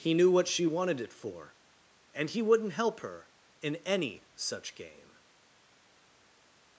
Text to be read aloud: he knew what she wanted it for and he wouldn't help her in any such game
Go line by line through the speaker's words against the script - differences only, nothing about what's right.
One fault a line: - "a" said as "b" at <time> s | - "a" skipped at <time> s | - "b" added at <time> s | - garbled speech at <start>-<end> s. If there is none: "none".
none